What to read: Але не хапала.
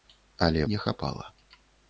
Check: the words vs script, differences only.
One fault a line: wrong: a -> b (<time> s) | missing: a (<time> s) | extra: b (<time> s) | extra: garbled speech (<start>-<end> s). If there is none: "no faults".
no faults